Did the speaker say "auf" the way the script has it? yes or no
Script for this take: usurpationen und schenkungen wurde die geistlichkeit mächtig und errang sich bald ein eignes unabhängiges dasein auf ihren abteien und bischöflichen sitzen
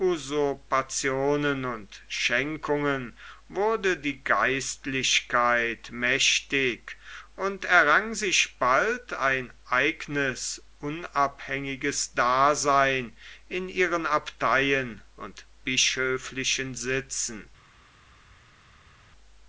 no